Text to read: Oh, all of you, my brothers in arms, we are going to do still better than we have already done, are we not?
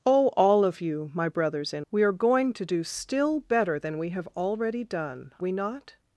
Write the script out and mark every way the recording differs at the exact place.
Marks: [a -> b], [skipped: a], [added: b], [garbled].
Oh, all of you, my brothers in [skipped: arms,] we are going to do still better than we have already done, [skipped: are] we not?